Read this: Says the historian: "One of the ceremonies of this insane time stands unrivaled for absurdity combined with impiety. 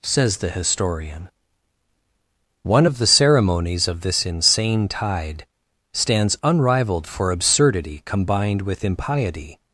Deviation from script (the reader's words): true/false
true